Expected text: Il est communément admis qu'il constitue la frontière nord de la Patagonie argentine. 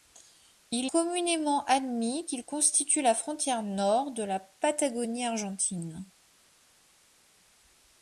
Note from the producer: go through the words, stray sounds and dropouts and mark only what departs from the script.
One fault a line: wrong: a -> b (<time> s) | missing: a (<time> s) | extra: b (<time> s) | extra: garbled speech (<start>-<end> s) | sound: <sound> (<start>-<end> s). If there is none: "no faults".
missing: est (0.9 s)